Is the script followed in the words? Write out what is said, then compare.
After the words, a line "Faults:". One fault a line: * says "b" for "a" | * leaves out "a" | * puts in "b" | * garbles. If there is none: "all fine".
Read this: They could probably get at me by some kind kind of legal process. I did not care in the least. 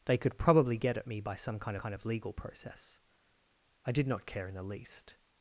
They could probably get at me by some kind kind of legal process. I did not care in the least.
Faults:
all fine